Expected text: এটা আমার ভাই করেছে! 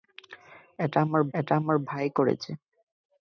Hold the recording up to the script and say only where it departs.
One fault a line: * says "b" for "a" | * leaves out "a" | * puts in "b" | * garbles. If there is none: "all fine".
* puts in "এটা আমার"